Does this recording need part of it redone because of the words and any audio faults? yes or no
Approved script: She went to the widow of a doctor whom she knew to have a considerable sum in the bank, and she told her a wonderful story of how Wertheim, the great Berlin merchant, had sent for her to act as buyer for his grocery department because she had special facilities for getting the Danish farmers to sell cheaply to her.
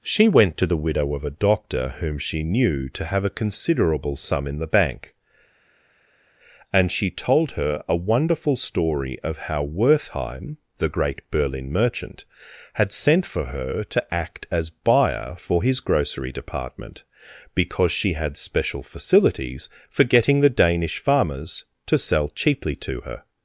no